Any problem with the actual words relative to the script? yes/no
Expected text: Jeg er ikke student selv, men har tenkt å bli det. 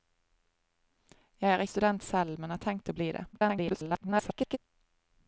yes